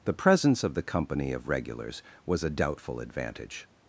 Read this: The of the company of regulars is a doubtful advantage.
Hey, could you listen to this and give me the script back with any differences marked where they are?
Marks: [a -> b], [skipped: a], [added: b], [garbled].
The [added: presence] of the company of regulars [is -> was] a doubtful advantage.